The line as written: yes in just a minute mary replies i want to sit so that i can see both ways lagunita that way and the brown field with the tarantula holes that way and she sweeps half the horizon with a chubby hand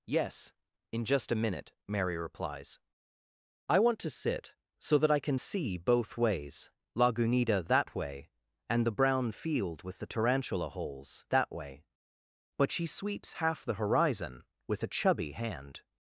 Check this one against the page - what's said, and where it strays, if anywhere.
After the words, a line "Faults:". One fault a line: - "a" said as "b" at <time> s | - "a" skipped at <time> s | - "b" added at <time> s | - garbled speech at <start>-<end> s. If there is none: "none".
yes in just a minute mary replies i want to sit so that i can see both ways lagunita that way and the brown field with the tarantula holes that way but she sweeps half the horizon with a chubby hand
Faults:
- "and" said as "but" at 12.6 s